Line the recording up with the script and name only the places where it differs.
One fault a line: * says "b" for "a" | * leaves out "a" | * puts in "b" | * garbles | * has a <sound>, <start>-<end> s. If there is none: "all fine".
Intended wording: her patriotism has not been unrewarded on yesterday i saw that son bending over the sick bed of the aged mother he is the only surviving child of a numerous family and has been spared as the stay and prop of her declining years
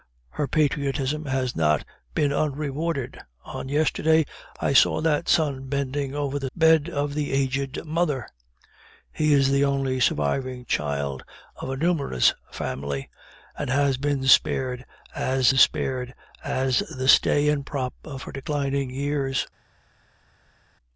* leaves out "sick"
* puts in "spared as"